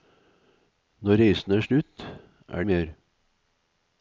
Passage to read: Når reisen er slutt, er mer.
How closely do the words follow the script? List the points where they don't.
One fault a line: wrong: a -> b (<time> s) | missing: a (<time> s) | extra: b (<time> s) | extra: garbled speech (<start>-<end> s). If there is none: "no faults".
no faults